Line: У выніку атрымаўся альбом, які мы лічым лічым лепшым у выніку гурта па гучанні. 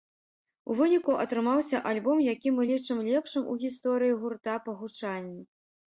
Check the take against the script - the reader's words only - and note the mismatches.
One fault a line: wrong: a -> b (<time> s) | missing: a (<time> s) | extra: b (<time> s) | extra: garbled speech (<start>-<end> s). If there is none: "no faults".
missing: лічым (3.0 s)
wrong: выніку -> гісторыі (3.6 s)